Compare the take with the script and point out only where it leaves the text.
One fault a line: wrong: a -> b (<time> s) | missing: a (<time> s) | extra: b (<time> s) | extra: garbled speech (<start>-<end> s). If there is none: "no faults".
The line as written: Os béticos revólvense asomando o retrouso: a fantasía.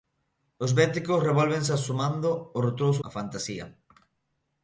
no faults